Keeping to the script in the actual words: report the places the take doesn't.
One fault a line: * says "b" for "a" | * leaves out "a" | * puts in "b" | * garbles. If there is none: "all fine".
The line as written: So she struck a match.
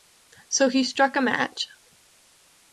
* says "he" for "she"